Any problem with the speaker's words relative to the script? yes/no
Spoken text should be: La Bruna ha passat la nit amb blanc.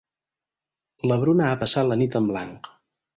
yes